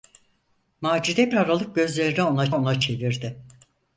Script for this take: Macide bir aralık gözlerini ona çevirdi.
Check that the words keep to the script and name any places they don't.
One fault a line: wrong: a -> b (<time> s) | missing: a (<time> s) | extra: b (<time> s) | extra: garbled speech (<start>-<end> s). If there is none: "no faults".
missing: bir (1.3 s)
extra: ona (2.5 s)